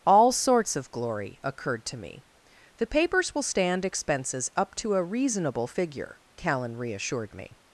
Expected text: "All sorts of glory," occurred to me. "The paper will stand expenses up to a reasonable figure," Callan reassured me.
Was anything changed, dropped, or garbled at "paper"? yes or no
yes